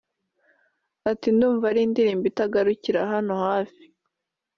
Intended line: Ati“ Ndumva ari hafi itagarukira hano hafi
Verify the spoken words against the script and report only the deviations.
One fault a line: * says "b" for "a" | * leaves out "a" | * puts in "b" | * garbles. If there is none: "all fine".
* says "indirimbo" for "hafi"